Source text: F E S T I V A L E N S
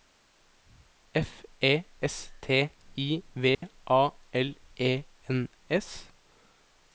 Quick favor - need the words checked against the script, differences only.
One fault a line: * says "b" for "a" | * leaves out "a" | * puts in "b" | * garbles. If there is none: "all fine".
all fine